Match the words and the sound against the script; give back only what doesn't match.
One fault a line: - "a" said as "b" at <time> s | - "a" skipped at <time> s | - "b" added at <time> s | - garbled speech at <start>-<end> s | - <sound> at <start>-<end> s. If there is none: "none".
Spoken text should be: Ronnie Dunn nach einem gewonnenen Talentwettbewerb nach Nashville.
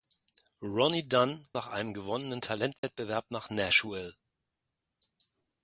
- dropout at 2.8-2.8 s